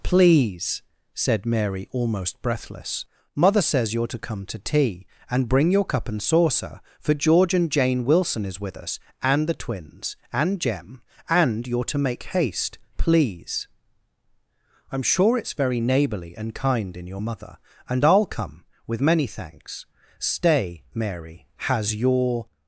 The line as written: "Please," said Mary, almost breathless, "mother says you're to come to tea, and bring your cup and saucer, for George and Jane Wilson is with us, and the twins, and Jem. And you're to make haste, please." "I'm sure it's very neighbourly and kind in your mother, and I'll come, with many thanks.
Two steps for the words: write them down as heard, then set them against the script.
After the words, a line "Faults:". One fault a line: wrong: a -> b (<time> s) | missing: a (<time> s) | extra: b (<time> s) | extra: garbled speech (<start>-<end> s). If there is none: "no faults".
"Please," said Mary, almost breathless, "mother says you're to come to tea, and bring your cup and saucer, for George and Jane Wilson is with us, and the twins, and Jem. And you're to make haste, please." "I'm sure it's very neighbourly and kind in your mother, and I'll come, with many thanks. Stay, Mary, has your
Faults:
extra: Stay Mary has your (20.2 s)